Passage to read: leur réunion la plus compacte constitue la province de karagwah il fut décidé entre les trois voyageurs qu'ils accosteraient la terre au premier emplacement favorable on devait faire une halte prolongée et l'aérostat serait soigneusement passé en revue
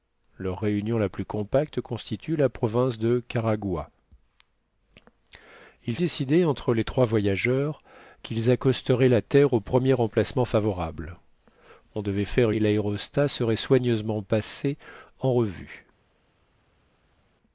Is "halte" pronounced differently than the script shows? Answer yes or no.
yes